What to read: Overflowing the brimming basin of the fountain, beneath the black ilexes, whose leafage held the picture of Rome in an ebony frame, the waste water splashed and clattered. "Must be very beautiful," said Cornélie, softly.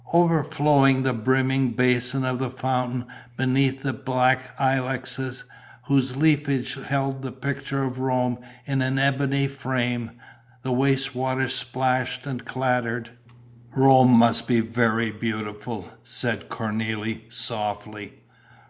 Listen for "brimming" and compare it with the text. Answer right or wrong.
right